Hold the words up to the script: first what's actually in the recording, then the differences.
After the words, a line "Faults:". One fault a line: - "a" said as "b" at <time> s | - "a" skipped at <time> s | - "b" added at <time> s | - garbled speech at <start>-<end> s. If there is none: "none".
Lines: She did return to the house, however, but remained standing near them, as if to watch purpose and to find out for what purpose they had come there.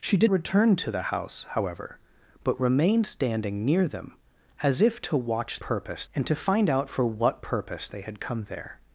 She did return to the house, however, but remained standing near them, as if to watch purpose and to find out for what purpose they had come there.
Faults:
none